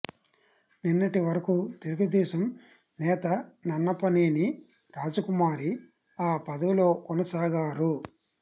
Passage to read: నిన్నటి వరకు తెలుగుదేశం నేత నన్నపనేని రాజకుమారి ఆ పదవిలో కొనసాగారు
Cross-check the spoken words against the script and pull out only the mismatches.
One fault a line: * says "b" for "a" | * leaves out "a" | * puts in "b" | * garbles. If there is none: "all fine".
all fine